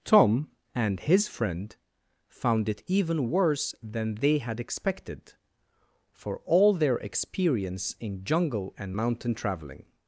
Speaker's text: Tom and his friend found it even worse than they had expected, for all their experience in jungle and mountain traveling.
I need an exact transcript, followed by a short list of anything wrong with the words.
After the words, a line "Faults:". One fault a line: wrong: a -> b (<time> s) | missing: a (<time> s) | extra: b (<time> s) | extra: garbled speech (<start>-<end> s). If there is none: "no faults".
Tom and his friend found it even worse than they had expected, for all their experience in jungle and mountain traveling.
Faults:
no faults